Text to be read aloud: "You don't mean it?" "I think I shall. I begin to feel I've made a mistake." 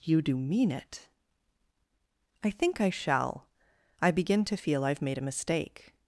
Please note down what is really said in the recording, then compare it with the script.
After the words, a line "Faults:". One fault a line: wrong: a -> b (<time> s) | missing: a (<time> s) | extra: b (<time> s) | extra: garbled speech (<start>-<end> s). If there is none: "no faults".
"You do mean it?" "I think I shall. I begin to feel I've made a mistake."
Faults:
wrong: don't -> do (0.2 s)